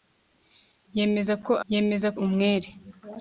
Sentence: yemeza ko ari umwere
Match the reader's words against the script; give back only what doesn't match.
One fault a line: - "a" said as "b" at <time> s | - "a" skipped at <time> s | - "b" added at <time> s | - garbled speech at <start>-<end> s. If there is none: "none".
- "ari" said as "yemeza" at 1.7 s